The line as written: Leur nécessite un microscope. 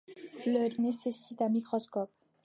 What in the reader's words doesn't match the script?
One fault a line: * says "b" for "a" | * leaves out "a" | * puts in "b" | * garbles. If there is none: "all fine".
all fine